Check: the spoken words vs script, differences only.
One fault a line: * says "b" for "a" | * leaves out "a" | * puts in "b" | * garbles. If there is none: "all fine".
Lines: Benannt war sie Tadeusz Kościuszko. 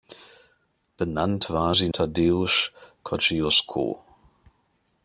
all fine